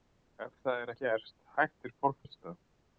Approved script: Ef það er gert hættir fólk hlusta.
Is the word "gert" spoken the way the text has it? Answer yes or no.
yes